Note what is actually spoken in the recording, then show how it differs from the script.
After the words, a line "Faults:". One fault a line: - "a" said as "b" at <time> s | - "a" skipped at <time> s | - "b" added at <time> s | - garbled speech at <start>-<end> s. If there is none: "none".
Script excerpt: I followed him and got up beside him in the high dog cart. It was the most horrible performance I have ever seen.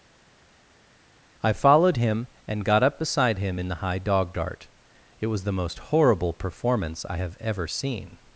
I followed him and got up beside him in the high dog dart. It was the most horrible performance I have ever seen.
Faults:
- "cart" said as "dart" at 4.3 s